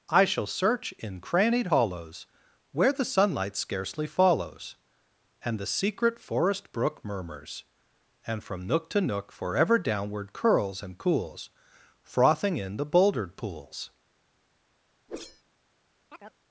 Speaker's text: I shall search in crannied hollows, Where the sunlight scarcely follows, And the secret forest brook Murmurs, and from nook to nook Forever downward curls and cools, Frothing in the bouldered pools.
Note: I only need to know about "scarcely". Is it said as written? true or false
true